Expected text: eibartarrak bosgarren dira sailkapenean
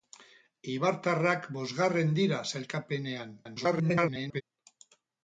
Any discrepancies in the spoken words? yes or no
yes